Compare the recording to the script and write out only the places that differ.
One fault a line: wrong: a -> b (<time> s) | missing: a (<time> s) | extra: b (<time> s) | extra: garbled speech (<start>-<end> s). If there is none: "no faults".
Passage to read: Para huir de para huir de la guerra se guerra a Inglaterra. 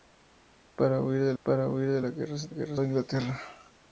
no faults